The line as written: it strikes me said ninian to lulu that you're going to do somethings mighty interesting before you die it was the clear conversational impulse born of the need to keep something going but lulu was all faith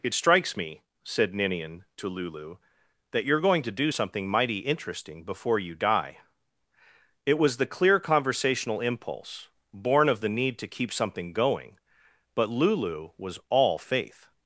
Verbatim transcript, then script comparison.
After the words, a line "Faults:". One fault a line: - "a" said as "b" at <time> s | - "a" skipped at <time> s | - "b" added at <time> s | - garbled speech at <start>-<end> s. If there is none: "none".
it strikes me said ninian to lulu that you're going to do something mighty interesting before you die it was the clear conversational impulse born of the need to keep something going but lulu was all faith
Faults:
- "somethings" said as "something" at 3.9 s